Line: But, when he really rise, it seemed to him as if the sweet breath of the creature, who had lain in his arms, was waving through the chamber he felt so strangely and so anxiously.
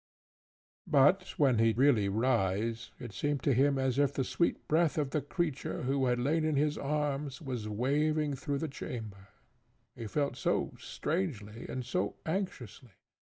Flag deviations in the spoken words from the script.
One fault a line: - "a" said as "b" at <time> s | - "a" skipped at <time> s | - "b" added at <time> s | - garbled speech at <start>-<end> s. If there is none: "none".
none